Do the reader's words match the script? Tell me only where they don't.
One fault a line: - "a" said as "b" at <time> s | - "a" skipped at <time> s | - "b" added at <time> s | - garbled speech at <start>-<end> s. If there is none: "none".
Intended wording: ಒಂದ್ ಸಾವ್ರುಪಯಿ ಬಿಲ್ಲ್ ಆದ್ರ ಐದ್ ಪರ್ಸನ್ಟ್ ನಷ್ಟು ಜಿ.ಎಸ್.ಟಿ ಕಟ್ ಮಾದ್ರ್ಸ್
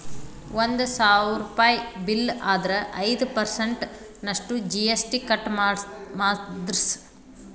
none